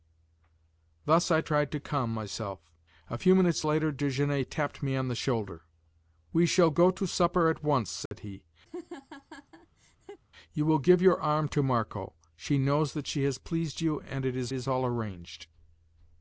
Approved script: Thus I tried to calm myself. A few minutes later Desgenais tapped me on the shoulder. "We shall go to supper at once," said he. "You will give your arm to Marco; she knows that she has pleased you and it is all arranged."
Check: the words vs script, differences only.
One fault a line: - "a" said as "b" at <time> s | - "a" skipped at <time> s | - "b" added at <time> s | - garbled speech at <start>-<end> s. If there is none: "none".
- "is" added at 14.5 s